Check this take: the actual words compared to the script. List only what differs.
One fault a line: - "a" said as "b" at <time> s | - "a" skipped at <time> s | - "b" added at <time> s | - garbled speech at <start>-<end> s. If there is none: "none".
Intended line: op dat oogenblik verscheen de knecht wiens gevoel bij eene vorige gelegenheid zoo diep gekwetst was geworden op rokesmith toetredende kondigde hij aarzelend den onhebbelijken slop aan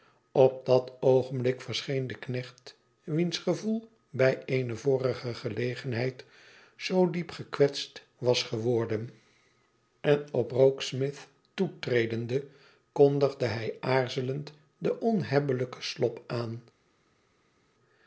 - "en" added at 10.0 s